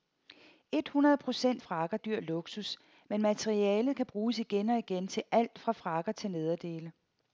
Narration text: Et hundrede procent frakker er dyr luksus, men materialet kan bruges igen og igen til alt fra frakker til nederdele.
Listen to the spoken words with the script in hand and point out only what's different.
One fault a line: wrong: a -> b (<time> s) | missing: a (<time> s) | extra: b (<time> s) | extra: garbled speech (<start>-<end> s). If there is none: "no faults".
no faults